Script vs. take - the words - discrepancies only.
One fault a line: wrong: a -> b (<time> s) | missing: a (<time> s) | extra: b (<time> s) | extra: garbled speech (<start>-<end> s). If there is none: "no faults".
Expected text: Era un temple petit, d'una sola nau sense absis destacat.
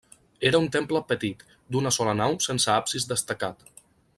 no faults